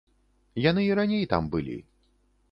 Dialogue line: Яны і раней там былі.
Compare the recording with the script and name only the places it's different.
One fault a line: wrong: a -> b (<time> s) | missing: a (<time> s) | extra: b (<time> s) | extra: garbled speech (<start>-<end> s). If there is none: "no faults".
no faults